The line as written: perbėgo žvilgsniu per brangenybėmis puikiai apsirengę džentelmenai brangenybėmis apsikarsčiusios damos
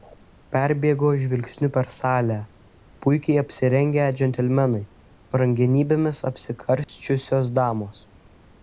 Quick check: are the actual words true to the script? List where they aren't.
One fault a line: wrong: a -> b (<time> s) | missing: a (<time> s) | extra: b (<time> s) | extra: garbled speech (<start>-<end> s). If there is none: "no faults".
wrong: brangenybėmis -> salę (1.9 s)